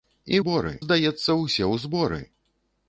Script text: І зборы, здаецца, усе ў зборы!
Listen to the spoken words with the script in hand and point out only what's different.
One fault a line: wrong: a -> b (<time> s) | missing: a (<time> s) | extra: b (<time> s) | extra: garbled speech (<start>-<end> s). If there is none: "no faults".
no faults